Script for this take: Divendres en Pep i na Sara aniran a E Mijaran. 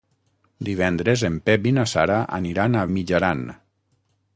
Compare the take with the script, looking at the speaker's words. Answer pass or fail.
pass